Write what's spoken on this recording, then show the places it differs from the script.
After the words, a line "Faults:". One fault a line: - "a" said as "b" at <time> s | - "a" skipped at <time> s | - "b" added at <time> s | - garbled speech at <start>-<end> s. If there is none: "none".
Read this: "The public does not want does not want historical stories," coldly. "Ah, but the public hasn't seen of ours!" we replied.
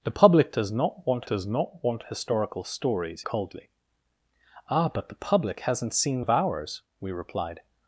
"The public does not want does not want historical stories," coldly. "Ah, but the public hasn't seen of ours!" we replied.
Faults:
none